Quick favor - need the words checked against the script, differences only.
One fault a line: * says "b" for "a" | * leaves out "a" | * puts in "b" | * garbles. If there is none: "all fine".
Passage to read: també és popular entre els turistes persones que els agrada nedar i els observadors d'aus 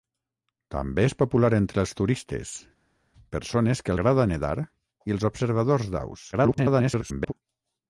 * leaves out "els"
* garbles